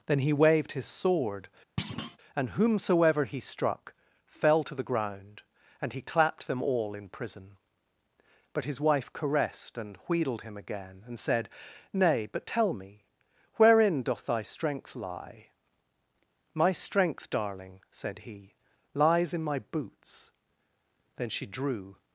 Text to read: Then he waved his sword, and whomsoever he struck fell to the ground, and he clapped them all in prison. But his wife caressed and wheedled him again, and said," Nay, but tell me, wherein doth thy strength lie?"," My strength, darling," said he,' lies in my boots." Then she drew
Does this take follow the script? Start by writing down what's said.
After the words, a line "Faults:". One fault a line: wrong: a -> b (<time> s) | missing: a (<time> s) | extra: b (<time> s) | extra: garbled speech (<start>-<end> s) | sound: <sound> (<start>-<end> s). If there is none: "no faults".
Then he waved his sword, and whomsoever he struck fell to the ground, and he clapped them all in prison. But his wife caressed and wheedled him again, and said," Nay, but tell me, wherein doth thy strength lie?"," My strength, darling," said he,' lies in my boots." Then she drew
Faults:
sound: thud (1.8-2.2 s)